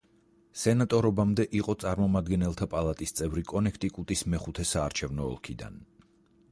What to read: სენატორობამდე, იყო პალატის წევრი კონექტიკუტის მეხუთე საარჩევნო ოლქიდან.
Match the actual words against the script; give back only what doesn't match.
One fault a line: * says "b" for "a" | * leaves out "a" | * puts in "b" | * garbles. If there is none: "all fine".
* puts in "წარმომადგენელთა"